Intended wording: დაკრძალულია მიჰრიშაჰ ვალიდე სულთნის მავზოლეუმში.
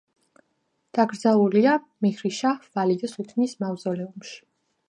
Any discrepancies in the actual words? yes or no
no